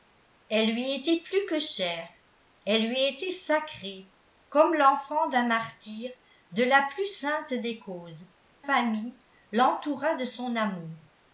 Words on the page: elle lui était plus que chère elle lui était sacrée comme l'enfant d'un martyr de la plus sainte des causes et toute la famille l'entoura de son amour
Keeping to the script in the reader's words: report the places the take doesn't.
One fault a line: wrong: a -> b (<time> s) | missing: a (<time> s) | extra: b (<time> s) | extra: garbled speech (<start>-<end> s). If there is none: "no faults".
missing: et toute la (8.3 s)